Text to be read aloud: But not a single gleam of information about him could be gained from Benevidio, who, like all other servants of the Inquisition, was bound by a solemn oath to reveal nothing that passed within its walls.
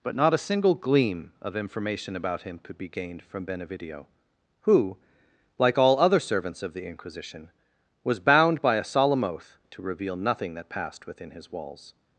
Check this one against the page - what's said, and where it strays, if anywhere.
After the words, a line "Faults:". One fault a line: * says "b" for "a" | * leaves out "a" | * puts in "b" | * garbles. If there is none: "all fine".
But not a single gleam of information about him could be gained from Benevidio, who, like all other servants of the Inquisition, was bound by a solemn oath to reveal nothing that passed within his walls.
Faults:
* says "his" for "its"